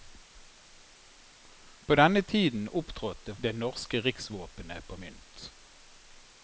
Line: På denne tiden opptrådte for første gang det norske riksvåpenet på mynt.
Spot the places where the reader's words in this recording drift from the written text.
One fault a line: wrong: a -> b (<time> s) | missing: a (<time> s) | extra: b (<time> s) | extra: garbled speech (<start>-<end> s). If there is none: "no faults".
missing: for første gang (3.4 s)